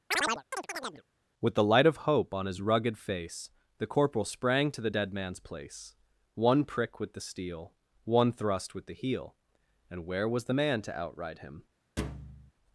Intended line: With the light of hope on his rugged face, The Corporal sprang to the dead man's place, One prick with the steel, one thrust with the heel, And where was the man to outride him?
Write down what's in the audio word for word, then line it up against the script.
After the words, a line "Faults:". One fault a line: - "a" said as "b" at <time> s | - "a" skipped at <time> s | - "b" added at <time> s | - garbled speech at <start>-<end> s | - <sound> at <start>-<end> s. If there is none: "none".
With the light of hope on his rugged face, The Corporal sprang to the dead man's place, One prick with the steel, one thrust with the heel, And where was the man to outride him?
Faults:
- chirp at 0.1-1.0 s
- thud at 12.0-12.5 s